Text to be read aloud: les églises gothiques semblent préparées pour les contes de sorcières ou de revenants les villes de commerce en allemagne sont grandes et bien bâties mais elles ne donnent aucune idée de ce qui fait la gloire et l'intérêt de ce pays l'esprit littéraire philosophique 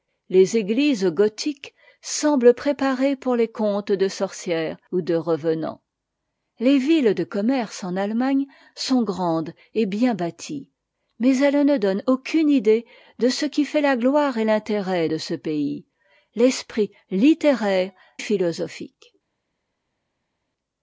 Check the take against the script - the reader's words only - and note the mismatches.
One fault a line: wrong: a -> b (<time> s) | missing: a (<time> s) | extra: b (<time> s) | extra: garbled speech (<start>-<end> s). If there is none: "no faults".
no faults